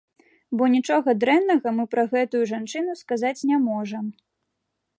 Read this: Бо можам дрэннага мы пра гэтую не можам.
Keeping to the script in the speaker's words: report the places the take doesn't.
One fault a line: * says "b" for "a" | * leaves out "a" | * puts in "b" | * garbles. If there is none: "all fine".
* says "нічога" for "можам"
* puts in "жанчыну сказаць"